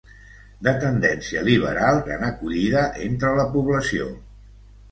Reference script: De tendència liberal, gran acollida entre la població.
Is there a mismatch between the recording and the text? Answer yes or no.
no